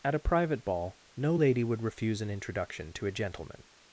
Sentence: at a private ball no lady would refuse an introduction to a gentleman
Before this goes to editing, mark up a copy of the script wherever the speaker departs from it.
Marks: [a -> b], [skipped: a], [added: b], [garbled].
at a private ball no lady would refuse an introduction to a gentleman